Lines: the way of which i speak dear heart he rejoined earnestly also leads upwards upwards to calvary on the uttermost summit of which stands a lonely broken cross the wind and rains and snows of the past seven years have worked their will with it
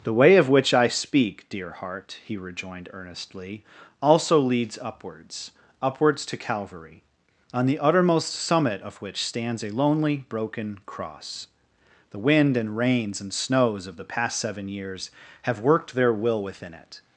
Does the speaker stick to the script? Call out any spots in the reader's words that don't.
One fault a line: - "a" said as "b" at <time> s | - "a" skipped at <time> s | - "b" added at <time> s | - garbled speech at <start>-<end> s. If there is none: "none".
- "with" said as "within" at 16.4 s